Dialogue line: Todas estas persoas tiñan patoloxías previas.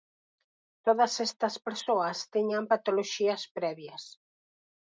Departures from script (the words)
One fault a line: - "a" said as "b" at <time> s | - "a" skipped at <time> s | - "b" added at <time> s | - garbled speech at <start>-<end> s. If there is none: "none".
none